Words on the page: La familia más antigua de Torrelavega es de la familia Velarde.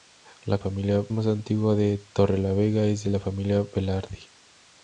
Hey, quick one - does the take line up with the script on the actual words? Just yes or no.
yes